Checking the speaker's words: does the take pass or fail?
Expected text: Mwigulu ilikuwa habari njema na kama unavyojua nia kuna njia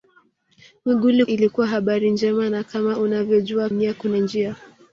pass